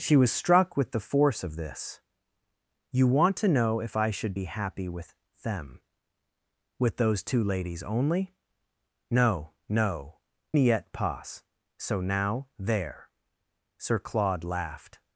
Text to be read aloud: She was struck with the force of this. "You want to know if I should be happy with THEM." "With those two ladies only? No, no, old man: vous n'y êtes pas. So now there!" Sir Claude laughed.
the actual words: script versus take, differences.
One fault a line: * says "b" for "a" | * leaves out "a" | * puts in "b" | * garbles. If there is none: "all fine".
* leaves out "old man vous"